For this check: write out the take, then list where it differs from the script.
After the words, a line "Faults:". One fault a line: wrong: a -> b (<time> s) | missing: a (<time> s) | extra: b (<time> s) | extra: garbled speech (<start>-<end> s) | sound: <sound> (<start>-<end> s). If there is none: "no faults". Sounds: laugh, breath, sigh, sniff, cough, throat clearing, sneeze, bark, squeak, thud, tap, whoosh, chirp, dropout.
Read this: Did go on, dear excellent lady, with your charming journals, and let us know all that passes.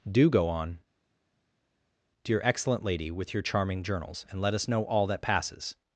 Do go on, dear excellent lady, with your charming journals, and let us know all that passes.
Faults:
wrong: Did -> Do (0.1 s)